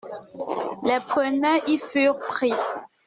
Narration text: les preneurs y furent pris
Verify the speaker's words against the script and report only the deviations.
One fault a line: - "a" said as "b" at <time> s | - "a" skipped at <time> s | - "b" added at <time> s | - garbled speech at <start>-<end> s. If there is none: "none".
none